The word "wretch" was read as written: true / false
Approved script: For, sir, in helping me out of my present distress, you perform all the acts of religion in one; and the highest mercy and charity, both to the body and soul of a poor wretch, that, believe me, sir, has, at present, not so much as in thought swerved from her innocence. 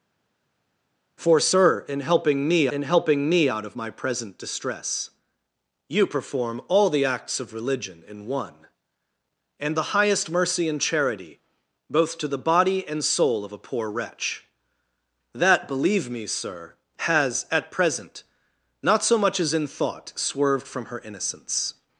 true